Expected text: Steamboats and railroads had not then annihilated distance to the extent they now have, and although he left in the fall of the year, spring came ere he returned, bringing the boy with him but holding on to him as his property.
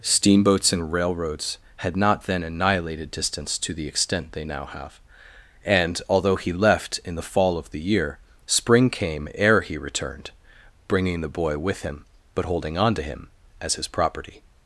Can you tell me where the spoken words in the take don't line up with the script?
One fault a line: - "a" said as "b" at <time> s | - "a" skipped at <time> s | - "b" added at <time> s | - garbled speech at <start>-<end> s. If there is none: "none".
none